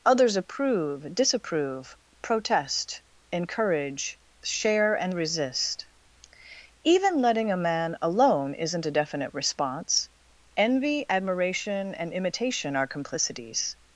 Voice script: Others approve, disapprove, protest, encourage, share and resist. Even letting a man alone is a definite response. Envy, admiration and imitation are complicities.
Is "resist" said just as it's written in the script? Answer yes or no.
yes